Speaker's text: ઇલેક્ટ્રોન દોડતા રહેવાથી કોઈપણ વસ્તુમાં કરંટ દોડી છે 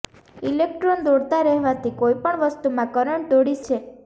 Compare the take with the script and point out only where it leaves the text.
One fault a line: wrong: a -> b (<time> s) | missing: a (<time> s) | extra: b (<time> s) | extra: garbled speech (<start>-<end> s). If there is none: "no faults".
no faults